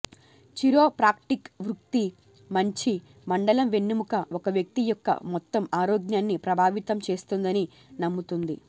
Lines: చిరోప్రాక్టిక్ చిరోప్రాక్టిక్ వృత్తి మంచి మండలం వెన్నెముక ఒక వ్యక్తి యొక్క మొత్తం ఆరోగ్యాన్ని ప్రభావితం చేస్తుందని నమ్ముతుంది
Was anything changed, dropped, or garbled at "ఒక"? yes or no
no